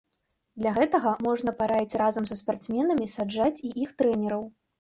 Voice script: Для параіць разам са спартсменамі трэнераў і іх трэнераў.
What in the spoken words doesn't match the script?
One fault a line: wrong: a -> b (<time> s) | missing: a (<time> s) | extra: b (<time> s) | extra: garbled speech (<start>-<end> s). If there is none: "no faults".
extra: гэтага можна (0.8 s)
wrong: трэнераў -> саджаць (3.2 s)